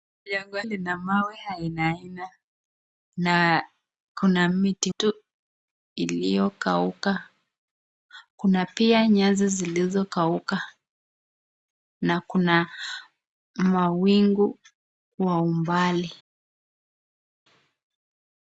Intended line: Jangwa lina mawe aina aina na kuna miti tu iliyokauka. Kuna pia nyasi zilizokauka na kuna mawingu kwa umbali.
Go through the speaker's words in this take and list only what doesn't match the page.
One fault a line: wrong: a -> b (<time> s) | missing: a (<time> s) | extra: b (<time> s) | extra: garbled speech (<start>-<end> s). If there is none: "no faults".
no faults